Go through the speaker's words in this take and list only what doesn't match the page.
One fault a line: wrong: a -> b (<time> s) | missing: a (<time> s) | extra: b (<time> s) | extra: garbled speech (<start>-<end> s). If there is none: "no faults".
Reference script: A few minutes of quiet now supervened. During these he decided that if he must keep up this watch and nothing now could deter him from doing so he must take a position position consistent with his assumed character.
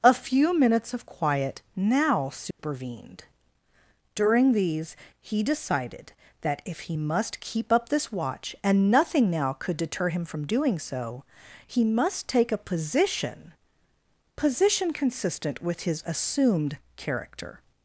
no faults